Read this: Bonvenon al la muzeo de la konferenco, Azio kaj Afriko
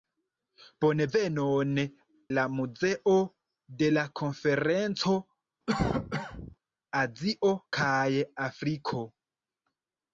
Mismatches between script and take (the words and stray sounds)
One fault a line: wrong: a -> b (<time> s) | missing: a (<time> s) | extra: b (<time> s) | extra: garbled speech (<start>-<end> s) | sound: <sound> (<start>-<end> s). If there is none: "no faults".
missing: al (1.8 s)
sound: cough (5.7-6.6 s)